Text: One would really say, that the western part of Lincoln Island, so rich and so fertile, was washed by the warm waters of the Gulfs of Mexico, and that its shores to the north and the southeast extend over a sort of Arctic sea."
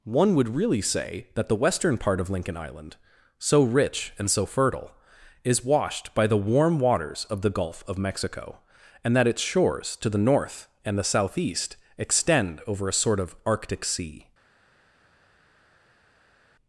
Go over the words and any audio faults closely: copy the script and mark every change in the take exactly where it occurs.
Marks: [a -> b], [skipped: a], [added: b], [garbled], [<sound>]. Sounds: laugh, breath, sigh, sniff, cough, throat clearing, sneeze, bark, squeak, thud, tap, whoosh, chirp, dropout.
One would really say, that the western part of Lincoln Island, so rich and so fertile, [was -> is] washed by the warm waters of the [Gulfs -> Gulf] of Mexico, and that its shores to the north and the southeast extend over a sort of Arctic sea."